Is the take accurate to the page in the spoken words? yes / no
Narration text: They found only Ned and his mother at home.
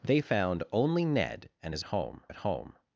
no